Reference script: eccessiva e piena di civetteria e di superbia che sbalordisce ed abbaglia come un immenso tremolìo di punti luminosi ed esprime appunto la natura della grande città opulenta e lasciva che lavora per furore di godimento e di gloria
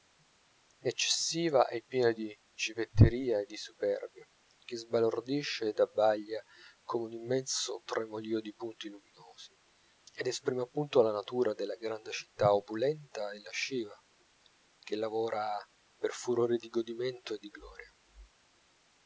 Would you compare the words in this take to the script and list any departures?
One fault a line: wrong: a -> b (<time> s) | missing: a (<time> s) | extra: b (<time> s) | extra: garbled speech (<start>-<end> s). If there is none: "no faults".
no faults